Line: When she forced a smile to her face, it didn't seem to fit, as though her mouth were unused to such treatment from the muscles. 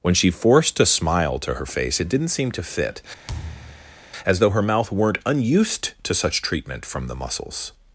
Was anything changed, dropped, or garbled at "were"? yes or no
yes